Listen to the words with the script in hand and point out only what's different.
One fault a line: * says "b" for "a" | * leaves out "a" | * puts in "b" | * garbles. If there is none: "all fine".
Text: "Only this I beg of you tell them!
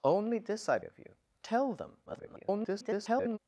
* leaves out "beg"
* garbles